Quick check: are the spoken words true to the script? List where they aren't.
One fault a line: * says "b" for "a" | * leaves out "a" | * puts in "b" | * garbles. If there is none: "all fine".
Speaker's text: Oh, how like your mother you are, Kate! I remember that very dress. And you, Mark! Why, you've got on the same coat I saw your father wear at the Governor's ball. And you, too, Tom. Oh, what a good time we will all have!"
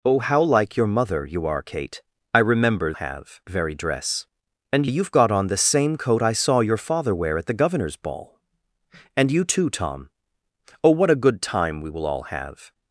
* says "have" for "that"
* leaves out "you Mark Why"